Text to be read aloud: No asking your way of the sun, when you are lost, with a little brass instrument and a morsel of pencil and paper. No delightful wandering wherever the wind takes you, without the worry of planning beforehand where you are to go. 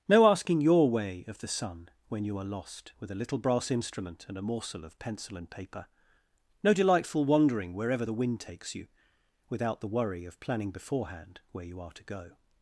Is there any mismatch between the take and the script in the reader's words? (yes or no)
no